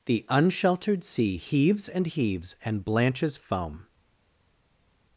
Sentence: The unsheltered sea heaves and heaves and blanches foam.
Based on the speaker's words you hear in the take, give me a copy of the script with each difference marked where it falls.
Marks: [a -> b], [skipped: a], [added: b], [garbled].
The unsheltered sea heaves and heaves and blanches foam.